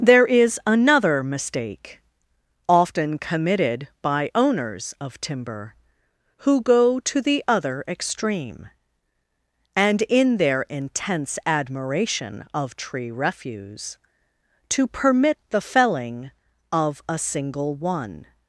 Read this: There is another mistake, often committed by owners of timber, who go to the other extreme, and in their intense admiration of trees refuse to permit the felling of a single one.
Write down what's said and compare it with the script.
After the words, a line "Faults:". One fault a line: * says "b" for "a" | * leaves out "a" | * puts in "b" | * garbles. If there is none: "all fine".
There is another mistake, often committed by owners of timber, who go to the other extreme, and in their intense admiration of tree refuse to permit the felling of a single one.
Faults:
* says "tree" for "trees"